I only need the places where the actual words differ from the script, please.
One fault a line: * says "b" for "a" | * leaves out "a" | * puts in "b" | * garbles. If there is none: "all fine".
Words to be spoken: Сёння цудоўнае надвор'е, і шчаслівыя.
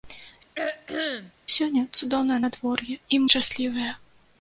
all fine